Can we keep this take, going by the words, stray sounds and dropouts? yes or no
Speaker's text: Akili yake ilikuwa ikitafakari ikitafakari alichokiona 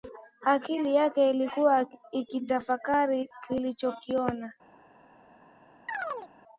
no